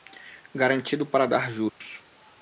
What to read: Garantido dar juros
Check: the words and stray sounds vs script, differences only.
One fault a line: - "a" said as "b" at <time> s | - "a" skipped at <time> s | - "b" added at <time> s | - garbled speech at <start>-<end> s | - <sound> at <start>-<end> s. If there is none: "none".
- "para" added at 1.1 s
- dropout at 1.7-1.8 s